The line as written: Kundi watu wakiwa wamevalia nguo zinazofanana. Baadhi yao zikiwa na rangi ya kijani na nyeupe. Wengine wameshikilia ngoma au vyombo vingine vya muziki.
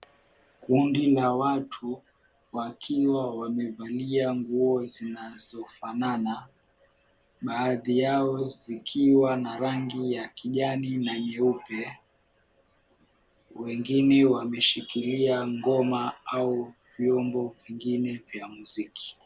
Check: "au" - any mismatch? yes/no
no